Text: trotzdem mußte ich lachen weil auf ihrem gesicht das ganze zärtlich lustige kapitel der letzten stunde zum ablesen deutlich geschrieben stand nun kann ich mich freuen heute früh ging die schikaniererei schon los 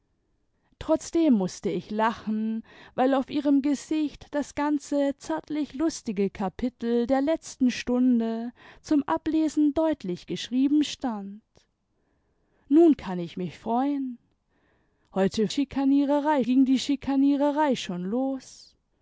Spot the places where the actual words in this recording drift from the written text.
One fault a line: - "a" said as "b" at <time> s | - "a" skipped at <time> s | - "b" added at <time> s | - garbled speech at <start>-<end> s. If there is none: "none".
- "früh" said as "schikaniererei" at 15.5 s